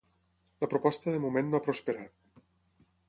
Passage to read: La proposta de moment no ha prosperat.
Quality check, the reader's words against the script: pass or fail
pass